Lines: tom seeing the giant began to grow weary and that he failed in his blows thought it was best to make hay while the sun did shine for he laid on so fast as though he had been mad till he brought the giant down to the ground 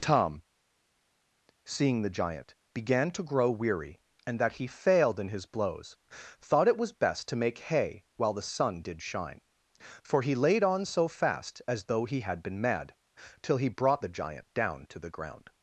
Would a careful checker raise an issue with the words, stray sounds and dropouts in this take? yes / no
no